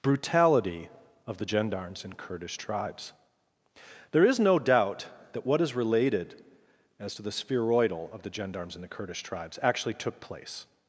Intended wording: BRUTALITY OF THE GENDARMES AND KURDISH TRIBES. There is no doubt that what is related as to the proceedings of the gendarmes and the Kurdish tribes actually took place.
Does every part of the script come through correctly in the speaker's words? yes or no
no